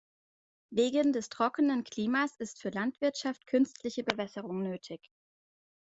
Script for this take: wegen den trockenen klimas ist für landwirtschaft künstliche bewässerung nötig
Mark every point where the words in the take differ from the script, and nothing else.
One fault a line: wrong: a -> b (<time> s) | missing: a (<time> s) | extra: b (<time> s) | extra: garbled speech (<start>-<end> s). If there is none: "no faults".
wrong: den -> des (1.1 s)